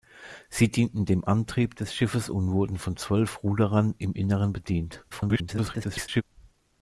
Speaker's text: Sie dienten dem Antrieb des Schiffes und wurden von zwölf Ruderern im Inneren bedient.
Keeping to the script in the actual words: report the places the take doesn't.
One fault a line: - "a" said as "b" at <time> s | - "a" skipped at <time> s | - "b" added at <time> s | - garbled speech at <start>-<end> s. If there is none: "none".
- garbled speech at 5.1-6.2 s